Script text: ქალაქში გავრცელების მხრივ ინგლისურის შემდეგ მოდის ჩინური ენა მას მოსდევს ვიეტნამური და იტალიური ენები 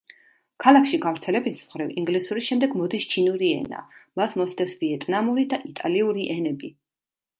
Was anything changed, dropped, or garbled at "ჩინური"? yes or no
no